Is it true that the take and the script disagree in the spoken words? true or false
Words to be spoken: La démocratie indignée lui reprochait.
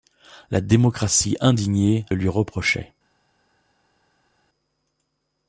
false